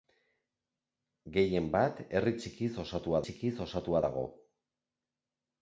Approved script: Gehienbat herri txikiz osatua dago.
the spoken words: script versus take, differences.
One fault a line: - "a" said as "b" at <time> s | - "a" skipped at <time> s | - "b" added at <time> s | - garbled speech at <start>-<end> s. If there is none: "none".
- "txikiz osatua" added at 3.2 s